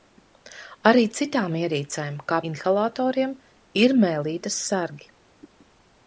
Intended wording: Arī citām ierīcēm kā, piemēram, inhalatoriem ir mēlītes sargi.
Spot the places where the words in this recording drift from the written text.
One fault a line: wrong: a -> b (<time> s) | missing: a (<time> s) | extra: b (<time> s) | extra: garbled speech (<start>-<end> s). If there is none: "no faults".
missing: piemēram (2.4 s)